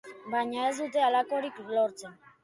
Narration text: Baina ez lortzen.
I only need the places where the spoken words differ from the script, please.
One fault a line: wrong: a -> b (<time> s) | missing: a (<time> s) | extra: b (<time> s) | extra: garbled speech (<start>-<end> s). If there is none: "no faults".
extra: dute halakorik (0.8 s)